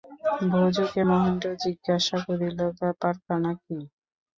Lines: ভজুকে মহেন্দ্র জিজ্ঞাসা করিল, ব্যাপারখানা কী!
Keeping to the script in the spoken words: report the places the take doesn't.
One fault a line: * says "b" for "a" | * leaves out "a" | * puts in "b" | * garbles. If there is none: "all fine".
all fine